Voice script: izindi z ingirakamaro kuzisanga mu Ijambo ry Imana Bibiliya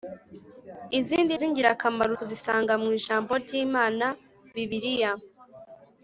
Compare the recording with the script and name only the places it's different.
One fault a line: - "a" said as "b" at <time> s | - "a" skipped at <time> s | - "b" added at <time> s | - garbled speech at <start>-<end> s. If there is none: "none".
none